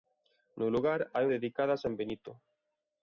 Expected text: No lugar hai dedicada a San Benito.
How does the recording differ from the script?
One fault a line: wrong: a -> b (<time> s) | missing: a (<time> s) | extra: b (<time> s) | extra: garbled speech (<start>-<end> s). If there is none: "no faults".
no faults